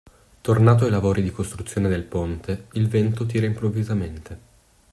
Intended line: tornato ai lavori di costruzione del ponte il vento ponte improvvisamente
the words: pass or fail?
fail